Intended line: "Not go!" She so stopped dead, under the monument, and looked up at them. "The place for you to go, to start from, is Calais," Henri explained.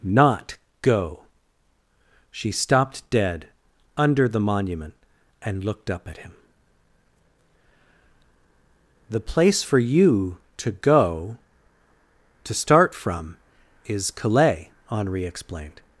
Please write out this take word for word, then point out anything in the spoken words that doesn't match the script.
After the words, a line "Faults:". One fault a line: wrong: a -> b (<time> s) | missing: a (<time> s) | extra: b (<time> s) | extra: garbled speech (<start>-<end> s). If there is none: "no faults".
"Not go!" She stopped dead, under the monument, and looked up at him. "The place for you to go, to start from, is Calais," Henri explained.
Faults:
missing: so (2.5 s)
wrong: them -> him (6.2 s)